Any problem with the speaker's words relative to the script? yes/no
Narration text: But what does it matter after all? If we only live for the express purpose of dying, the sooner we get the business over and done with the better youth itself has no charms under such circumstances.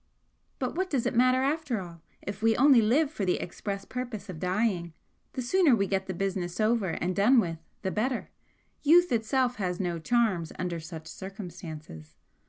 no